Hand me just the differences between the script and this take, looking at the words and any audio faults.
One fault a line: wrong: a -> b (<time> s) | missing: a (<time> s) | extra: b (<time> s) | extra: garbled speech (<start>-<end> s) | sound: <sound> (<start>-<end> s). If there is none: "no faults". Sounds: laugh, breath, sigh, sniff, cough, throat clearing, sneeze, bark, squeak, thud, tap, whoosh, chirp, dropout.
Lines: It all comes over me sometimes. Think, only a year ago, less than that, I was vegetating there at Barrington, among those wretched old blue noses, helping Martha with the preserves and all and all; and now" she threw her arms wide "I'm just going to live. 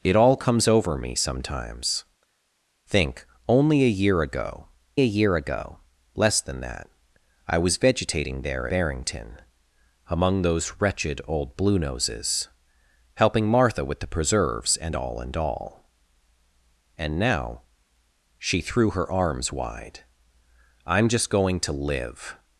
extra: a year ago (5.0 s)
missing: at (8.7 s)